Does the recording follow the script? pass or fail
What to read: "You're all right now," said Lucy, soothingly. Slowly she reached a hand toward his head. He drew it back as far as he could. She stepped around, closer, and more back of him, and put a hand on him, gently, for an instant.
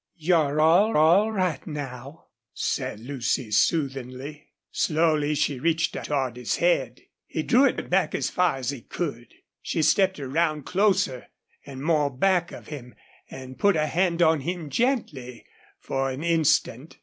fail